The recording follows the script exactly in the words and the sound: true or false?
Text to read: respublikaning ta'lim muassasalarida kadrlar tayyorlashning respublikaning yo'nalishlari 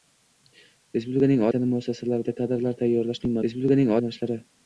true